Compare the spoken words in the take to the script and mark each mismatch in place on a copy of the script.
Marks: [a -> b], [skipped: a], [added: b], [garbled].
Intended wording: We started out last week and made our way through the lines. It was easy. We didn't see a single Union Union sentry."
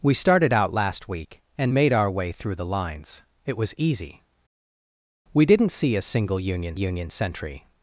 We started out last week and made our way through the lines. It was easy. We didn't see a single Union Union sentry."